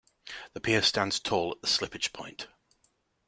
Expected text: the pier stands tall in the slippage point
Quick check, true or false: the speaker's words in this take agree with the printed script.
false